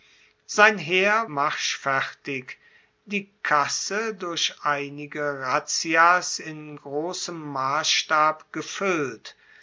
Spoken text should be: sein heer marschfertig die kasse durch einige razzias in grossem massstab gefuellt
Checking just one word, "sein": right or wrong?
right